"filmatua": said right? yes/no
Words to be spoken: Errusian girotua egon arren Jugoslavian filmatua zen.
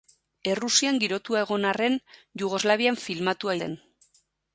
yes